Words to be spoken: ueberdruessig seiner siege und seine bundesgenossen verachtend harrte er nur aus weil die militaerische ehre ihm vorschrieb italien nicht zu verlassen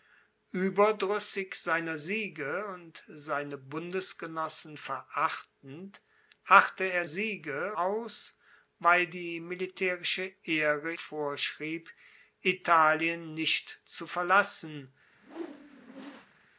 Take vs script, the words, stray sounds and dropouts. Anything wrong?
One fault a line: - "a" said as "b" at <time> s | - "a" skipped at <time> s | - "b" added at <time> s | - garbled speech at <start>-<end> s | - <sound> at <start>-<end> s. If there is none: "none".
- "nur" said as "siege" at 7.0 s
- "ihm" skipped at 10.9 s
- whoosh at 15.1-16.5 s